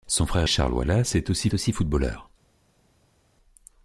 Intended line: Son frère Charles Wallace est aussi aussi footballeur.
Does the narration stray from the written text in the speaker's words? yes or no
no